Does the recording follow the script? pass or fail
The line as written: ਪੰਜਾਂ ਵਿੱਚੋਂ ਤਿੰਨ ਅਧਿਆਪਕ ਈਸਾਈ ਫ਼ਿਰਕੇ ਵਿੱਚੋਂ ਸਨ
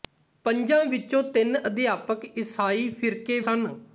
fail